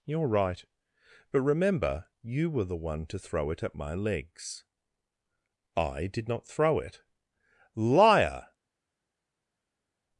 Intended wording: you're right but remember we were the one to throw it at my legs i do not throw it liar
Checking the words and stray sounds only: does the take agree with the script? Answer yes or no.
no